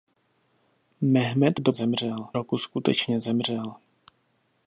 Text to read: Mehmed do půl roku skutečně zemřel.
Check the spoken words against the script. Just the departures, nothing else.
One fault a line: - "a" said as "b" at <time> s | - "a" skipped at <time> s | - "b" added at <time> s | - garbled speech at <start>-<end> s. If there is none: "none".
- "půl" said as "zemřel" at 1.7 s